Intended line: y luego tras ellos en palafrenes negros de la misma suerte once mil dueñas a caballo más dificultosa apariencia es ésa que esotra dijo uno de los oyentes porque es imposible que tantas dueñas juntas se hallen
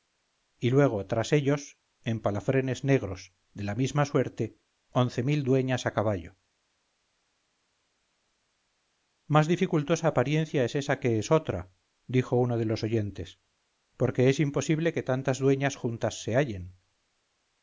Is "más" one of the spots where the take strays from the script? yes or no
no